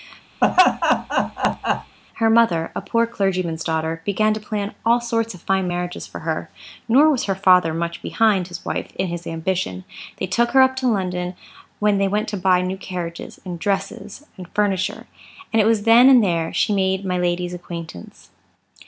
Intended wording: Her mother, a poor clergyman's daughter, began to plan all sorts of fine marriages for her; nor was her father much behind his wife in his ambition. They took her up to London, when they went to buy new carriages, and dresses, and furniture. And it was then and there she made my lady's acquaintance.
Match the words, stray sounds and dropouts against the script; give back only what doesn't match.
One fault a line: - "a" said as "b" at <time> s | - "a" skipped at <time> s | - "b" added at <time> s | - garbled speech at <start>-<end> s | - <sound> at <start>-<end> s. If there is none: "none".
- laugh at 0.4-2.0 s